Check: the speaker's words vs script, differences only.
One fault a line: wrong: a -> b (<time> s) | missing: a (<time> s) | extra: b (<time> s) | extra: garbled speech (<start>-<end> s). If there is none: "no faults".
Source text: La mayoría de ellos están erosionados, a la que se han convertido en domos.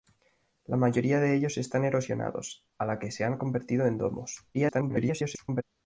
extra: garbled speech (4.5-5.6 s)